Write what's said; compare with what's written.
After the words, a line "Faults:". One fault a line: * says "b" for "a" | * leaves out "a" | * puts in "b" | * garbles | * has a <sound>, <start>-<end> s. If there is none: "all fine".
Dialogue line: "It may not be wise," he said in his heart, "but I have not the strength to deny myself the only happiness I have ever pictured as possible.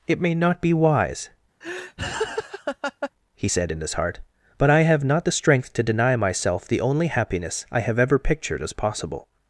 "It may not be wise," he said in his heart, "but I have not the strength to deny myself the only happiness I have ever pictured as possible.
Faults:
* has a laugh, 1.6-3.1 s